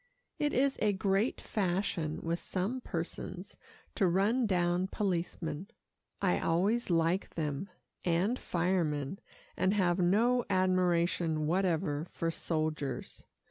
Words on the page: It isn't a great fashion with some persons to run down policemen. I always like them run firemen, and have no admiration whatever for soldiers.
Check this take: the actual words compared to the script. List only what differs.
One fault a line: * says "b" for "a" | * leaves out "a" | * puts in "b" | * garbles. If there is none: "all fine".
* says "is" for "isn't"
* says "and" for "run"